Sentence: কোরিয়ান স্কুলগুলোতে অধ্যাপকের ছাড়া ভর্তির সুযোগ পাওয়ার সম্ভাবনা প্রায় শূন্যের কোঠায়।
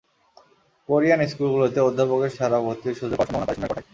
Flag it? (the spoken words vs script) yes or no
no